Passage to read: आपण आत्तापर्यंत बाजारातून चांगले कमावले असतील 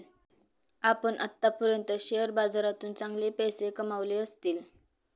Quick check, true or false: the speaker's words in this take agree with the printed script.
false